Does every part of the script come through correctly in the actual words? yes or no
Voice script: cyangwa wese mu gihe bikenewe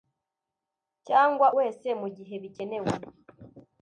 yes